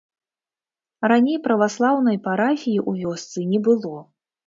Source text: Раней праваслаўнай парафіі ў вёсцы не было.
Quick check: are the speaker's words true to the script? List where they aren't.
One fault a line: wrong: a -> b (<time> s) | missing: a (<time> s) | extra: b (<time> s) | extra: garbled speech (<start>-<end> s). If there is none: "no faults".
no faults